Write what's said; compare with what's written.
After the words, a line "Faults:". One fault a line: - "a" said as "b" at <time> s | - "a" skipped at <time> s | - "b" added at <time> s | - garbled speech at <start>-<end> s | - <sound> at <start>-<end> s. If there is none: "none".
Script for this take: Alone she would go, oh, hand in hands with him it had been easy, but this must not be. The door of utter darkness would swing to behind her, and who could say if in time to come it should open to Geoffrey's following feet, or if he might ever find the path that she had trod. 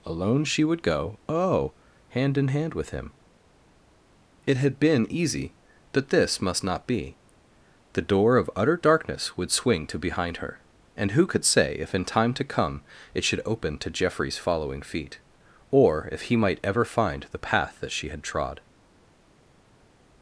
Alone she would go, oh, hand in hand with him it had been easy, but this must not be. The door of utter darkness would swing to behind her, and who could say if in time to come it should open to Geoffrey's following feet, or if he might ever find the path that she had trod.
Faults:
- "hands" said as "hand" at 2.5 s